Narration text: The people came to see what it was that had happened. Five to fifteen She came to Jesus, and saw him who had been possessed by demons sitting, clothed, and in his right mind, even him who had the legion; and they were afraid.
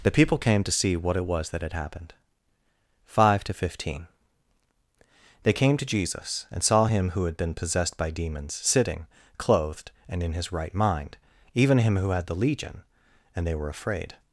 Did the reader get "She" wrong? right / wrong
wrong